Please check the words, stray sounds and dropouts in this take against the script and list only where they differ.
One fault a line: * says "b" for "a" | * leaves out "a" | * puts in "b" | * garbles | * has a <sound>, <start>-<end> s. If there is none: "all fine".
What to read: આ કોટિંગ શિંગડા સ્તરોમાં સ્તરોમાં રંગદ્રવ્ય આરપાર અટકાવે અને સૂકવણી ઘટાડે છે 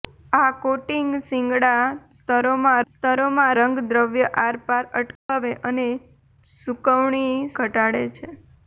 * has a dropout, 5.2-5.3 s